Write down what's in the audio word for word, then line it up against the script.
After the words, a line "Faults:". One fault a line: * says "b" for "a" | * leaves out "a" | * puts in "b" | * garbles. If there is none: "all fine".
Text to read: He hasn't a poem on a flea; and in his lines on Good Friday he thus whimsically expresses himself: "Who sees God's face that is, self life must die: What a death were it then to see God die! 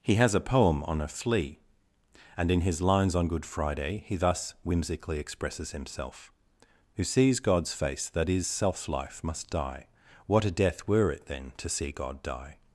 He has a poem on a flea; and in his lines on Good Friday he thus whimsically expresses himself: "Who sees God's face that is, self life must die: What a death were it then to see God die!
Faults:
* says "has" for "hasn't"